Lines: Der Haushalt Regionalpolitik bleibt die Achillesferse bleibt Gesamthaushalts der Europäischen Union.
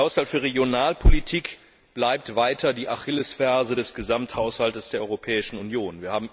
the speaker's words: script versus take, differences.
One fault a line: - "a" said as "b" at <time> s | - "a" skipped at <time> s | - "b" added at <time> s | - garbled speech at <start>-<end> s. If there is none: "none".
- "für" added at 0.3 s
- "weiter" added at 2.4 s
- "bleibt" said as "des" at 3.7 s